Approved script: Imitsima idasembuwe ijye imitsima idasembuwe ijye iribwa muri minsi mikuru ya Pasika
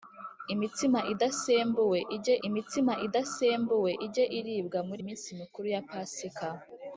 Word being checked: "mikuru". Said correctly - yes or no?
yes